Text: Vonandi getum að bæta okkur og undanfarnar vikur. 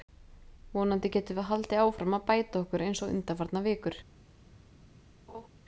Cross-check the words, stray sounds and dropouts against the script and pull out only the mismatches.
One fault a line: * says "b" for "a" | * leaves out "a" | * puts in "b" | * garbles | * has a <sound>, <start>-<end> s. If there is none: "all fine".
* puts in "við haldið áfram"
* puts in "eins"
* has a laugh, 5.3-5.5 s